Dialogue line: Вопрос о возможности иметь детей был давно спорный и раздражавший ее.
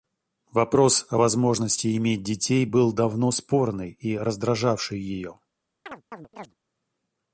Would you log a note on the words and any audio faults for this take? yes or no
yes